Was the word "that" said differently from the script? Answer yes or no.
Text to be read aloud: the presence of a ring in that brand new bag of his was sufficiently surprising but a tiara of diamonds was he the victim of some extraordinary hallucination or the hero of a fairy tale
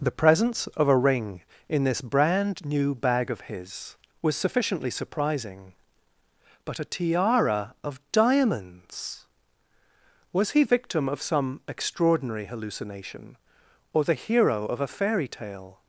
yes